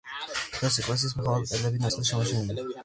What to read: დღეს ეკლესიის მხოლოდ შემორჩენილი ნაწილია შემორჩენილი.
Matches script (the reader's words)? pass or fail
fail